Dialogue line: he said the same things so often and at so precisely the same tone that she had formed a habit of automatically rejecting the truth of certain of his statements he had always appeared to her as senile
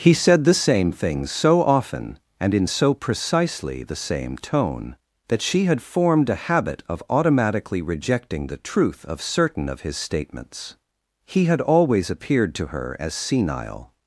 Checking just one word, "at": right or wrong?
wrong